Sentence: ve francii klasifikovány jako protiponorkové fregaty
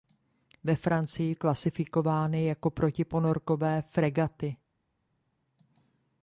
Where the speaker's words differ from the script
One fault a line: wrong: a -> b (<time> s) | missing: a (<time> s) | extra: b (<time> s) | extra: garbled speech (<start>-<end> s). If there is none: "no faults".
no faults